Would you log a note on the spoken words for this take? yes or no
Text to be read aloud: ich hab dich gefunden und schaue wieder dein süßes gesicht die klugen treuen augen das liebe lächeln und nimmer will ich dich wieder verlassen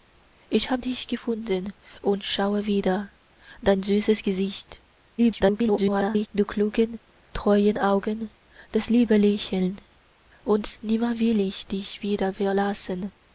yes